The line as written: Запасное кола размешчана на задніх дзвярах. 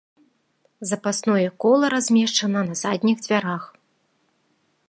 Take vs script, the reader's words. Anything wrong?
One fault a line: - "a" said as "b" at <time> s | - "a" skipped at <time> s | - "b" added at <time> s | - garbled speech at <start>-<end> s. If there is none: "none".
none